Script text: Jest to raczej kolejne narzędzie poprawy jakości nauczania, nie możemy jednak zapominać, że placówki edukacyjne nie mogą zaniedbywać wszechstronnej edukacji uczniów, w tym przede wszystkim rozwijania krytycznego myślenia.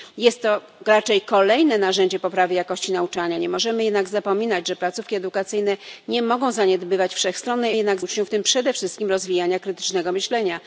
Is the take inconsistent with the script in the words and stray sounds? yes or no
yes